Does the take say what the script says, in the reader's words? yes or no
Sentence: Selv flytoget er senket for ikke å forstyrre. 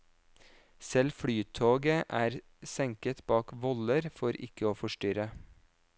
no